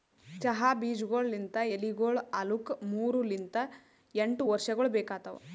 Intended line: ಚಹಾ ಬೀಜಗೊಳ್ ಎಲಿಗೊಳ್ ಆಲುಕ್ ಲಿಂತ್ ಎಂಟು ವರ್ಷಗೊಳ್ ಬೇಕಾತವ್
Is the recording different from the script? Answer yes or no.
yes